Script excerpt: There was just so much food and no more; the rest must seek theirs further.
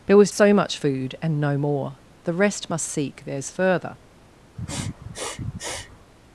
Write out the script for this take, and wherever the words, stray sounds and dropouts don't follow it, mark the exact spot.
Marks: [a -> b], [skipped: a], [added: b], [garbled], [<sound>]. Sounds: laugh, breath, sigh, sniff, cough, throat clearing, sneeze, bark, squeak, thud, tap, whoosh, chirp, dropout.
There was [skipped: just] so much food and no more; the rest must seek theirs further. [sniff]